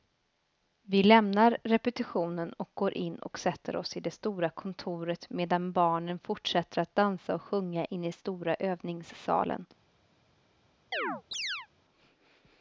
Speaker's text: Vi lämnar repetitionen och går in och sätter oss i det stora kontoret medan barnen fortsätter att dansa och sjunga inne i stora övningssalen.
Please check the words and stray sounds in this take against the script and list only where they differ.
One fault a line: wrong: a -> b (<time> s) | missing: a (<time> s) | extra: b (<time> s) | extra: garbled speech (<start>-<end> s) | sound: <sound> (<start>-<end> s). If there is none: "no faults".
sound: chirp (10.9-11.7 s)